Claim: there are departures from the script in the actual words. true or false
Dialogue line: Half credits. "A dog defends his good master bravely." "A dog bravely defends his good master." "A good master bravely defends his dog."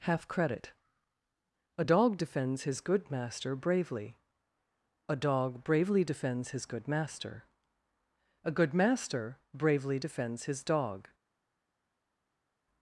true